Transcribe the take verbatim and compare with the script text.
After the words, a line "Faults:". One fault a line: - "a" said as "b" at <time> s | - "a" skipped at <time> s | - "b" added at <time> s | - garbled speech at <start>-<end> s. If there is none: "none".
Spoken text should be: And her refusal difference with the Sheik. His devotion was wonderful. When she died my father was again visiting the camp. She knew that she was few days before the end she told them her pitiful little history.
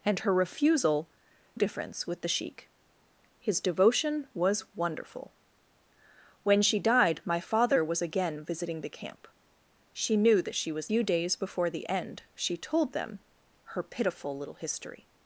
And her refusal difference with the Sheik. His devotion was wonderful. When she died my father was again visiting the camp. She knew that she was few days before the end she told them her pitiful little history.
Faults:
none